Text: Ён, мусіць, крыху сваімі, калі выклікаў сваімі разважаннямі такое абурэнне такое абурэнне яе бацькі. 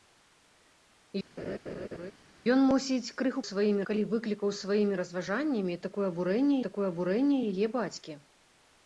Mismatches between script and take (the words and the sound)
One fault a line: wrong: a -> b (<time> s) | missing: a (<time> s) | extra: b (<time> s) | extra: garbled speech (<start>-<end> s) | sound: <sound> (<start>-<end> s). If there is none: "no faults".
sound: laugh (1.4-2.1 s)